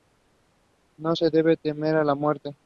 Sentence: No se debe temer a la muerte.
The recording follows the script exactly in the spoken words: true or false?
true